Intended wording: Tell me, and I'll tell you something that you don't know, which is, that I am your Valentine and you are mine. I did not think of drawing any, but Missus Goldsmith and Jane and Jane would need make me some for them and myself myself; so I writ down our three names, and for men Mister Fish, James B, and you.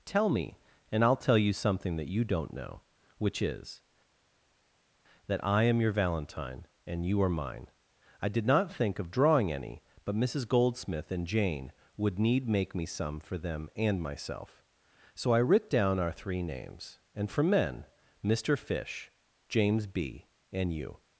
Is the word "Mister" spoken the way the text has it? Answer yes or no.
yes